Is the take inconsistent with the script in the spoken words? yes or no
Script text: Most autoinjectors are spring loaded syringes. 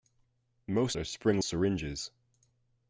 yes